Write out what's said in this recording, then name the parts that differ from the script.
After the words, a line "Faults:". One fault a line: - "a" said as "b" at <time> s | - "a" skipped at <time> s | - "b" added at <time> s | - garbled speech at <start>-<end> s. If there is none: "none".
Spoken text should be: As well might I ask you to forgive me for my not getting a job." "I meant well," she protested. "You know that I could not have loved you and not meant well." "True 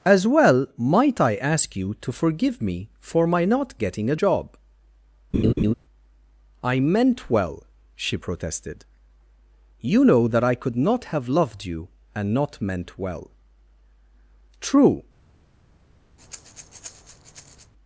As well might I ask you to forgive me for my not getting a job." "I meant well," she protested. "You know that I could not have loved you and not meant well." "True
Faults:
none